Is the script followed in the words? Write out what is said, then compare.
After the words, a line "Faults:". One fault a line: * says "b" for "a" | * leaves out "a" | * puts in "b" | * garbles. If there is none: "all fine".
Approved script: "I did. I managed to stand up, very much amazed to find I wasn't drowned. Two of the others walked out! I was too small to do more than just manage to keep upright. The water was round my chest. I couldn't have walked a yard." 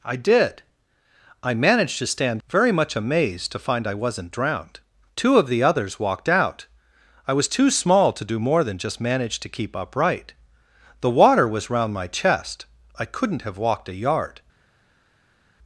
"I did. I managed to stand very much amazed to find I wasn't drowned. Two of the others walked out! I was too small to do more than just manage to keep upright. The water was round my chest. I couldn't have walked a yard."
Faults:
* leaves out "up"